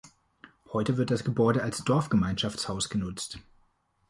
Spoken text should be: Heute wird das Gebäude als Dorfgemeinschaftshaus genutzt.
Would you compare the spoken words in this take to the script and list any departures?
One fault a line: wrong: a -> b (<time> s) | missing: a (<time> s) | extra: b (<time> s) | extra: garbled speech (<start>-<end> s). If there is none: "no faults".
no faults